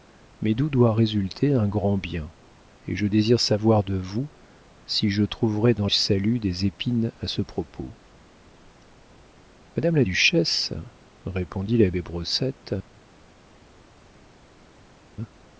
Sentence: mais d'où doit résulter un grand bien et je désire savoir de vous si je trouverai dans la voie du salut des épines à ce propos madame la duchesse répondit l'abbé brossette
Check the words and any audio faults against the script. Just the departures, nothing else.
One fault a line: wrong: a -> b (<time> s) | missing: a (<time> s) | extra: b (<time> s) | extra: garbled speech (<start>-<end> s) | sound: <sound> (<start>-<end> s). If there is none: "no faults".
missing: la voie du (5.9 s)